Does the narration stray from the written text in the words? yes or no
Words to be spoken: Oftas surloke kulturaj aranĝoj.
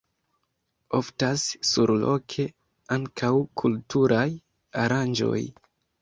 yes